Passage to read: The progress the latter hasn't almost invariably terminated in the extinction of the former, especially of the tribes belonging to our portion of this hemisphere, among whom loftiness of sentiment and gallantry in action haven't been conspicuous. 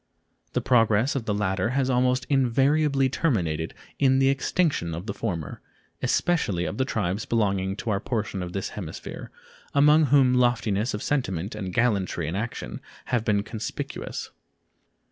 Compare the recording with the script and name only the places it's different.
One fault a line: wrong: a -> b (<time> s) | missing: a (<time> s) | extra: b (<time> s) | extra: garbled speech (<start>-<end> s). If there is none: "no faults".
extra: of (1.1 s)
wrong: hasn't -> has (1.8 s)
wrong: haven't -> have (13.1 s)